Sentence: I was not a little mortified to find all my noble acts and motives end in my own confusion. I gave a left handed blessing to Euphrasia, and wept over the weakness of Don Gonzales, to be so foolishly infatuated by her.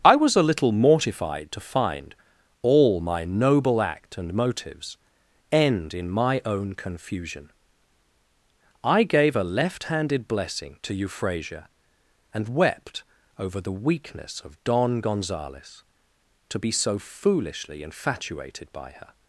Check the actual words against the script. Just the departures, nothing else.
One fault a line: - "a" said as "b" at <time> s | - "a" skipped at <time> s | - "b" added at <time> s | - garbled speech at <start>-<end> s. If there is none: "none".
- "not" skipped at 0.3 s
- "acts" said as "act" at 3.8 s